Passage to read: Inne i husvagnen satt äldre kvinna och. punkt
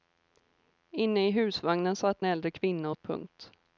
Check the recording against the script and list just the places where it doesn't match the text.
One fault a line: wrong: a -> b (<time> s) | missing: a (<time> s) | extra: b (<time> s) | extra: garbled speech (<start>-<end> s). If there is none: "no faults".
no faults